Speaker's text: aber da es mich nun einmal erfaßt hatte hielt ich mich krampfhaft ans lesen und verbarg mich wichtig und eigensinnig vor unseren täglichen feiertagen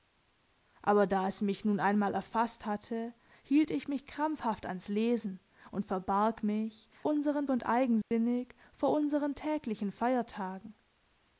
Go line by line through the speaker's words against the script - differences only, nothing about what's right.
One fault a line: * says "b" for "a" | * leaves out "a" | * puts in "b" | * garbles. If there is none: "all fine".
* says "unseren" for "wichtig"